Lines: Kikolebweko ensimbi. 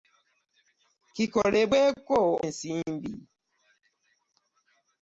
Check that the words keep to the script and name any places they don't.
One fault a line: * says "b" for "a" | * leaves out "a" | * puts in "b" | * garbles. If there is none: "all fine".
all fine